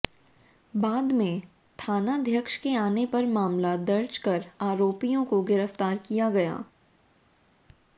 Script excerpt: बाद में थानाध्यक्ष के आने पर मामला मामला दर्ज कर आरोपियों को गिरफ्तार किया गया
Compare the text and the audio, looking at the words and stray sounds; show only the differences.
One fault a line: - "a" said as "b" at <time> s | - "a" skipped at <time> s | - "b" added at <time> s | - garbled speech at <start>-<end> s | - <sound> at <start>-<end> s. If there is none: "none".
- "मामला" skipped at 3.8 s